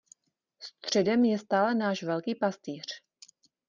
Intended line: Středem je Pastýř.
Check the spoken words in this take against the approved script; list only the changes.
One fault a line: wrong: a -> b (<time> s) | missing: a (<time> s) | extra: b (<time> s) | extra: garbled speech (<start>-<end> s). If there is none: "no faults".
extra: stále náš Velký (1.4 s)